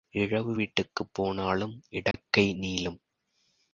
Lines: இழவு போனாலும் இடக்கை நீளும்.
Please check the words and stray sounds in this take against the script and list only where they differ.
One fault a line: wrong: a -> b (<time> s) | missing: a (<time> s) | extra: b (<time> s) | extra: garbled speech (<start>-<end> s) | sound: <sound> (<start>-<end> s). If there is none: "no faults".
extra: வீட்டுக்குப் (0.5 s)
sound: dropout (2.1-2.1 s)